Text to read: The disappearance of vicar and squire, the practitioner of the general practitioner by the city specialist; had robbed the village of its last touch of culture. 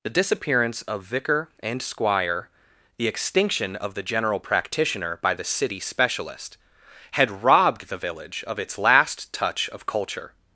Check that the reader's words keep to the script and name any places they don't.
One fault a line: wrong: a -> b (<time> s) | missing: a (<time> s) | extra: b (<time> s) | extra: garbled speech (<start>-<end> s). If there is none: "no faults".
wrong: practitioner -> extinction (3.1 s)